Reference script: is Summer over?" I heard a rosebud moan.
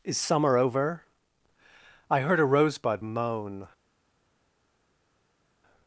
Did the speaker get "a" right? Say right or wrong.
right